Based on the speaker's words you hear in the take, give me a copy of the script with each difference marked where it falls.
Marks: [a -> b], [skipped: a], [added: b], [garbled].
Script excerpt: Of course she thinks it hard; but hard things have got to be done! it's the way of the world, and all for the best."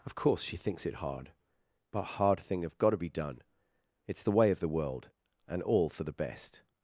Of course she thinks it hard; but hard [things -> thing] have got to be done! it's the way of the world, and all for the best."